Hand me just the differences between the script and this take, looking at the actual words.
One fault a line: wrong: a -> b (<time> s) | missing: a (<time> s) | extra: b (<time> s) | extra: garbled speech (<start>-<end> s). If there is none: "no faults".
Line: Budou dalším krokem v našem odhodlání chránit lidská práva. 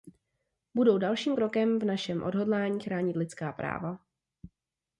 no faults